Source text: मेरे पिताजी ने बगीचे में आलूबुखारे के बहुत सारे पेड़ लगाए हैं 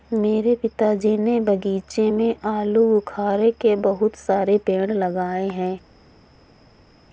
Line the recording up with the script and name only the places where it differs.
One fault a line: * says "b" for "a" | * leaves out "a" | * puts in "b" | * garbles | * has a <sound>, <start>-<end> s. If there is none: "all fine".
all fine